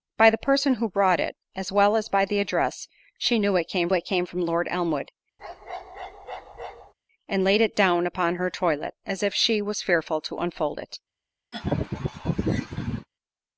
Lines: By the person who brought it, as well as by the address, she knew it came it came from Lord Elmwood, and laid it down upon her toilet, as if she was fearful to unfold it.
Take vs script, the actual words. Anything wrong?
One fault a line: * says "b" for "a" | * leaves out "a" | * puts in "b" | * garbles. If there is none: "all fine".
all fine